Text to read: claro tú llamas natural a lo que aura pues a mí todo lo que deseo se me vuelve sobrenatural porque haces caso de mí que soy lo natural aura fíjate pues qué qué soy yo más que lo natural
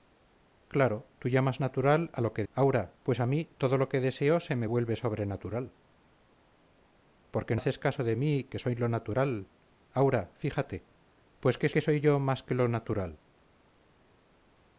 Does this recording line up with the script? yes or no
yes